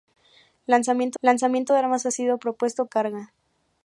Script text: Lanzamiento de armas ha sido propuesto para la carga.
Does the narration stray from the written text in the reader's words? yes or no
yes